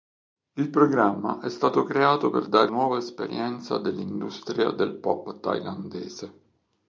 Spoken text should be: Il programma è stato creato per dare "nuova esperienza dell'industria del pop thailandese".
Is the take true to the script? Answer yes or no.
yes